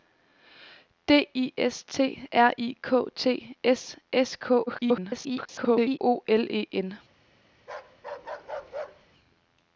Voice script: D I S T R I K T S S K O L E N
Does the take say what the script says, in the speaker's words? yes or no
no